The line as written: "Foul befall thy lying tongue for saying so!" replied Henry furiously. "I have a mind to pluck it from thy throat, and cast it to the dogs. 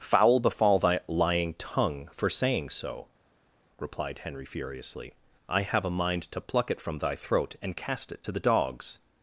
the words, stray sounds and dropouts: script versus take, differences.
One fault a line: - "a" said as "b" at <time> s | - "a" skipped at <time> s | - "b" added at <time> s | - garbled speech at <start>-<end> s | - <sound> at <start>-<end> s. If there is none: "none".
none